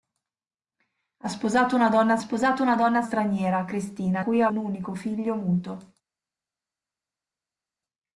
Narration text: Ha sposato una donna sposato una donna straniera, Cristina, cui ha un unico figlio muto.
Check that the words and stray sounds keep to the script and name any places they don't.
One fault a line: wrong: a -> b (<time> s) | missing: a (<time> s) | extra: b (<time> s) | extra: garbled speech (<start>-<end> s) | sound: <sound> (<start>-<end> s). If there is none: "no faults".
no faults